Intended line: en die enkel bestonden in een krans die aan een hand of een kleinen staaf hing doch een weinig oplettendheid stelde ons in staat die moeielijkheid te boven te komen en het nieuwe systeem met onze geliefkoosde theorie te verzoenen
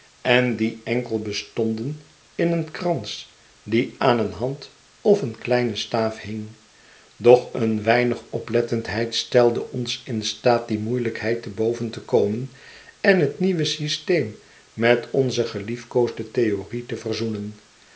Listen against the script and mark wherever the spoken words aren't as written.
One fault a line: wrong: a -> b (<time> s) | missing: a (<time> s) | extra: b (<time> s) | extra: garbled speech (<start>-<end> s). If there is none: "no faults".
no faults